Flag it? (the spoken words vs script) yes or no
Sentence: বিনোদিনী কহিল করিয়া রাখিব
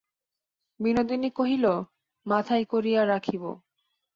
yes